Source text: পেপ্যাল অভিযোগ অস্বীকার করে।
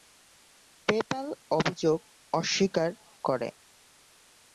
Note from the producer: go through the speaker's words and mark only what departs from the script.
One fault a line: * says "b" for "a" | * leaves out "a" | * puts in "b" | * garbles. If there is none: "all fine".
all fine